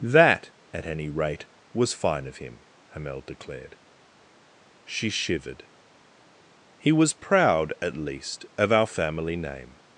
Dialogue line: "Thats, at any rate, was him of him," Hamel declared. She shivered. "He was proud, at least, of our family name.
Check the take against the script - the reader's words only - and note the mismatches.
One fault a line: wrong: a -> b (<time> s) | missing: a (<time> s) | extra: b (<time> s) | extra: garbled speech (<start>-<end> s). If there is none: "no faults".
wrong: Thats -> That (0.0 s)
wrong: him -> fine (1.9 s)